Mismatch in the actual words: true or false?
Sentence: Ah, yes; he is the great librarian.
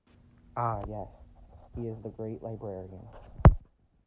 false